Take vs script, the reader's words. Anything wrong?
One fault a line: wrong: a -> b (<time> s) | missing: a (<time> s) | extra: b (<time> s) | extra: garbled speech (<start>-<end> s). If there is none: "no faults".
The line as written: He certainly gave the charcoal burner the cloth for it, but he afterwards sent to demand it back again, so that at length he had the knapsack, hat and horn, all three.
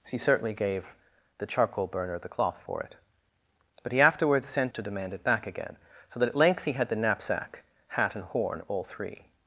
no faults